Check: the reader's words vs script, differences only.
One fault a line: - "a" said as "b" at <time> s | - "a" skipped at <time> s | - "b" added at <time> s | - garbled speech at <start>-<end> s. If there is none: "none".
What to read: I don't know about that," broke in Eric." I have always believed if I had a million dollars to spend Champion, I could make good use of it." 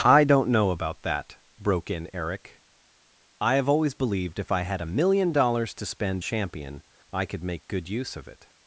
none